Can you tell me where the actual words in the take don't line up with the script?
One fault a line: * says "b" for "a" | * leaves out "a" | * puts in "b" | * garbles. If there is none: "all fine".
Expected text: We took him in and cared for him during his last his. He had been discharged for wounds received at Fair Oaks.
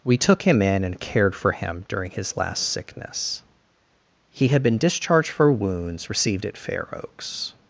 * says "sickness" for "his"